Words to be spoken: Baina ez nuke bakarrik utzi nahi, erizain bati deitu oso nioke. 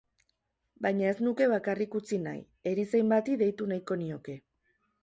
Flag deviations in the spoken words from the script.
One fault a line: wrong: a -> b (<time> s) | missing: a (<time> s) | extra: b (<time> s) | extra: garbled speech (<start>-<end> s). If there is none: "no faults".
wrong: oso -> nahiko (3.8 s)